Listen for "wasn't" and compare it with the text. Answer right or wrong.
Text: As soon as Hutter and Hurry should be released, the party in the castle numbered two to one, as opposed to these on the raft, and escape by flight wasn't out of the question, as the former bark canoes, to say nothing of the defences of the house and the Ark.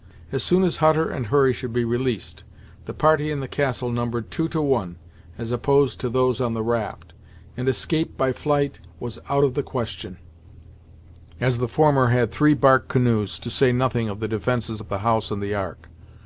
wrong